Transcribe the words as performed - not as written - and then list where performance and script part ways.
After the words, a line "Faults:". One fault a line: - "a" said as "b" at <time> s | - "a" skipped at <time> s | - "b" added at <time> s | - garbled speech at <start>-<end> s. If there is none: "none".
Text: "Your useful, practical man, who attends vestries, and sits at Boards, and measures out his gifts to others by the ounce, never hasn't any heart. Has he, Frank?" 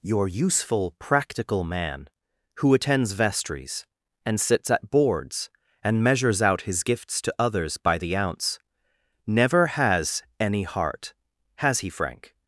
"Your useful, practical man, who attends vestries, and sits at Boards, and measures out his gifts to others by the ounce, never has any heart. Has he, Frank?"
Faults:
- "hasn't" said as "has" at 9.7 s